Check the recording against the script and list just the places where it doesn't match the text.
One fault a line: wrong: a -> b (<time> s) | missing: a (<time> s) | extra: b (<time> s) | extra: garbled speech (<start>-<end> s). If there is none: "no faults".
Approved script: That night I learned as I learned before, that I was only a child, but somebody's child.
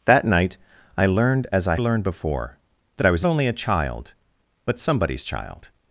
no faults